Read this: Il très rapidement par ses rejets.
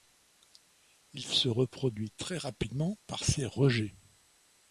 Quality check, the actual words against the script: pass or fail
fail